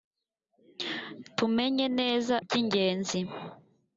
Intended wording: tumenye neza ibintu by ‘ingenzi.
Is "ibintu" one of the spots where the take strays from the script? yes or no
yes